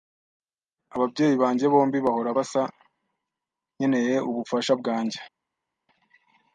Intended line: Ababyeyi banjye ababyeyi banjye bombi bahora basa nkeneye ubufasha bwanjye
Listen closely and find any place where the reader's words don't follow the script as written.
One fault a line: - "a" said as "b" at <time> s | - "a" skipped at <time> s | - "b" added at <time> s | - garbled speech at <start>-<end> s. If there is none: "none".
- "ababyeyi banjye" skipped at 1.6 s